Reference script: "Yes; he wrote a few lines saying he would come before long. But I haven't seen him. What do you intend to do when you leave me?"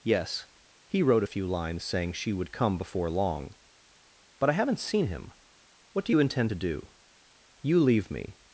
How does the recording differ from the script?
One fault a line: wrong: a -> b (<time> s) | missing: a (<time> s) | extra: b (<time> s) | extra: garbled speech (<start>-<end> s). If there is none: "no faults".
wrong: he -> she (2.1 s)
missing: when (6.9 s)